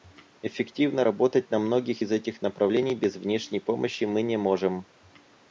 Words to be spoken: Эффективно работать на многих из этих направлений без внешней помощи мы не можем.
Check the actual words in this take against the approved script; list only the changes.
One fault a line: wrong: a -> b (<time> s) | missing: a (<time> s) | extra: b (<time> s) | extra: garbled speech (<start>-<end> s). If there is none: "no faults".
no faults